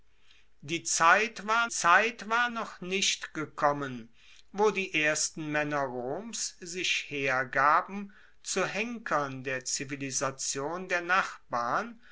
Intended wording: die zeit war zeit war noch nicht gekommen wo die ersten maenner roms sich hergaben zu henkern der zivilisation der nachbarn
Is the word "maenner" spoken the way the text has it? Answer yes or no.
yes